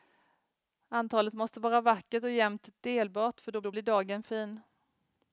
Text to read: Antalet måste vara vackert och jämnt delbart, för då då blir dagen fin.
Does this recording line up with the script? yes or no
yes